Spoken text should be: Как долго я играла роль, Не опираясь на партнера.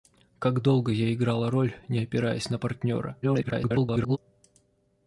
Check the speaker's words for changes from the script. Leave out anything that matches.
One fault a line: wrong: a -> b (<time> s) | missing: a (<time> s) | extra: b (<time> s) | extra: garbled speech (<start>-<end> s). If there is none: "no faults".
extra: garbled speech (3.2-4.2 s)